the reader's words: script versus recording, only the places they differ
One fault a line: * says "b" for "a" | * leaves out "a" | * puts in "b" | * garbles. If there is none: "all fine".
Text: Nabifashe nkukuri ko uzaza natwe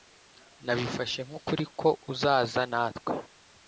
all fine